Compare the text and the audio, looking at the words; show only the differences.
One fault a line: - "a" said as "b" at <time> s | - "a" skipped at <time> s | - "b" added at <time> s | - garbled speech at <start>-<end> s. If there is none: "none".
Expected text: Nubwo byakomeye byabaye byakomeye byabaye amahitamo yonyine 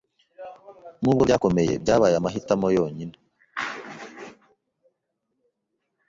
- "byakomeye byabaye" skipped at 2.1 s